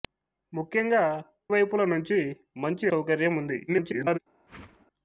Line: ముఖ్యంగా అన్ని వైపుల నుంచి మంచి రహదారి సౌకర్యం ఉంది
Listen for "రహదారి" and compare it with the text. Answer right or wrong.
wrong